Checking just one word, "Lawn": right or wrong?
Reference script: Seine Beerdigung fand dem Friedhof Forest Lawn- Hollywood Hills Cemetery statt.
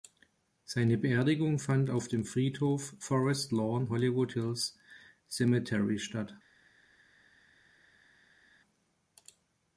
right